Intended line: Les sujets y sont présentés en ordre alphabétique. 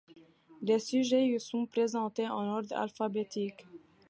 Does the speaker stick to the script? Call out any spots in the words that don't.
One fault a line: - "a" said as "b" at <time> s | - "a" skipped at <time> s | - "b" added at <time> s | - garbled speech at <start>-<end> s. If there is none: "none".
none